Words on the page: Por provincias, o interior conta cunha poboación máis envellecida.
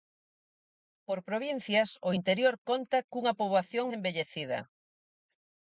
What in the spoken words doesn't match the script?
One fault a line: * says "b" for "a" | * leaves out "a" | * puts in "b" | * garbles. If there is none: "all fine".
* leaves out "máis"